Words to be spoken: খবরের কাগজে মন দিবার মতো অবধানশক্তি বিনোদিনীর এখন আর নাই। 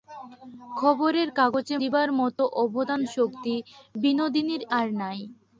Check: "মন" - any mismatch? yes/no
yes